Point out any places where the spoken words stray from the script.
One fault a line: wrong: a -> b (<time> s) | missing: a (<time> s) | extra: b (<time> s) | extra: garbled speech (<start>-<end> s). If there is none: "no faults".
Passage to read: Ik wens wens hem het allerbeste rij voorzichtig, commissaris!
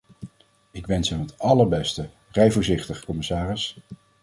missing: wens (1.1 s)